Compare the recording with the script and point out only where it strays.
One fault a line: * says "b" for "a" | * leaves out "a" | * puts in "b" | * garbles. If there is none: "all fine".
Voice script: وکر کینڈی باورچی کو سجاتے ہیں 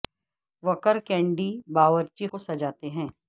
all fine